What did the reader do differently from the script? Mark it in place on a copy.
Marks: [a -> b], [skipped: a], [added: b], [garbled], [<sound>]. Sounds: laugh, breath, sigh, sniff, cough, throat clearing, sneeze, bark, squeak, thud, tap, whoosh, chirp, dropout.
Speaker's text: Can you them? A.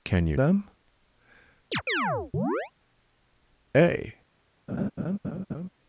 Can you them? [chirp] A. [laugh]